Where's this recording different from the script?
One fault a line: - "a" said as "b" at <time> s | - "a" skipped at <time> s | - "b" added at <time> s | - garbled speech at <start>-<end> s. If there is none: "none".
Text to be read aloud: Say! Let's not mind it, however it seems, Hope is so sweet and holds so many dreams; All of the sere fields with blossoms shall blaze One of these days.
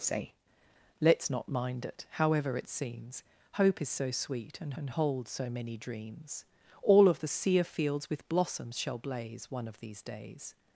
- "and" added at 4.7 s